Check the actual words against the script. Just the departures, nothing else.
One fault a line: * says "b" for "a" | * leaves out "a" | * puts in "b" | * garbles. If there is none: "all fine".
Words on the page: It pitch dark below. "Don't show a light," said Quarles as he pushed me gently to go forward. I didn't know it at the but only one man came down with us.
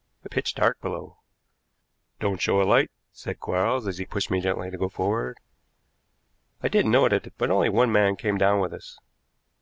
all fine